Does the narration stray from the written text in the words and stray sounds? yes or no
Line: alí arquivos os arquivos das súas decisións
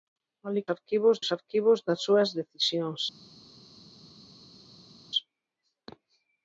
no